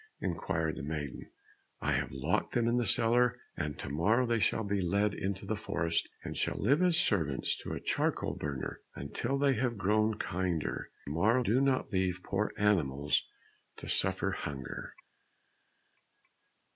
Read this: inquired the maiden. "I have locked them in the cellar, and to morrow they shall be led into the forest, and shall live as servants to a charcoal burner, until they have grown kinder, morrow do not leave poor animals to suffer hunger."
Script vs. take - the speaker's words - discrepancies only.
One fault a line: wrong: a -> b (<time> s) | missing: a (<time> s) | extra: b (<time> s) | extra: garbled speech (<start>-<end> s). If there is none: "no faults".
no faults